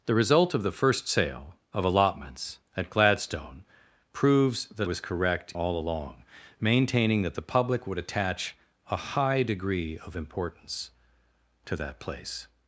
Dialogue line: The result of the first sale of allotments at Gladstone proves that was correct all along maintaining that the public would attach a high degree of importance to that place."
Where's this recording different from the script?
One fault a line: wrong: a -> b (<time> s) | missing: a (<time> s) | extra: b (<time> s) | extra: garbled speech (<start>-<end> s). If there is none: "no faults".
no faults